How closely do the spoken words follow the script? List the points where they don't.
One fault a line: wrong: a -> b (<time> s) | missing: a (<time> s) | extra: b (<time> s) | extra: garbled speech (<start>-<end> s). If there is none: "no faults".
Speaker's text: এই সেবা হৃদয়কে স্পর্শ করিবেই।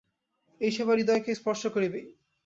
no faults